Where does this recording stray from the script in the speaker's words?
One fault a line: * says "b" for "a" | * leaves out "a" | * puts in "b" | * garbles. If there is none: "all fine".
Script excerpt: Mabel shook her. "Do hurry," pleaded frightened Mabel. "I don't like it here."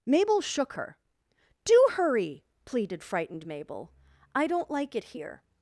all fine